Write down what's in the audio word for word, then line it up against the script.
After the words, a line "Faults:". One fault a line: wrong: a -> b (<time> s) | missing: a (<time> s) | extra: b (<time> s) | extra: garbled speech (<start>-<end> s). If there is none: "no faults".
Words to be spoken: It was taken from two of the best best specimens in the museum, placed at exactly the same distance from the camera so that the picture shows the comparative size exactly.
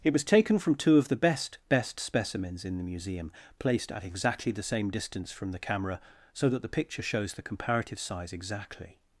It was taken from two of the best best specimens in the museum, placed at exactly the same distance from the camera so that the picture shows the comparative size exactly.
Faults:
no faults